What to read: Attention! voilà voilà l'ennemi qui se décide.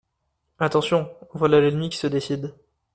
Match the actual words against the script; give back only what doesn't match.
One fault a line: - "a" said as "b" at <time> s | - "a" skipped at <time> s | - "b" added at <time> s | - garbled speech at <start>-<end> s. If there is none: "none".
- "voilà" skipped at 1.6 s